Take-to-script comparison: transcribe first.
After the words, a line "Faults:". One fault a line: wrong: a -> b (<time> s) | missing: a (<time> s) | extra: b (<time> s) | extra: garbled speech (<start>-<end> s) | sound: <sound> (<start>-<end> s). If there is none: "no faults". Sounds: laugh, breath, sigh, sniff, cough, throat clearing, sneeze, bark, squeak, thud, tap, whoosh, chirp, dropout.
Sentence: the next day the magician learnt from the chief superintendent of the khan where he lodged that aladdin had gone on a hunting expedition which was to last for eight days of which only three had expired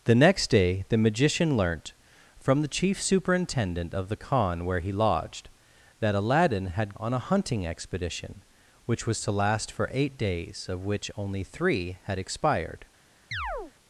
the next day the magician learnt from the chief superintendent of the khan where he lodged that aladdin had on a hunting expedition which was to last for eight days of which only three had expired
Faults:
missing: gone (7.0 s)
sound: chirp (13.3-13.7 s)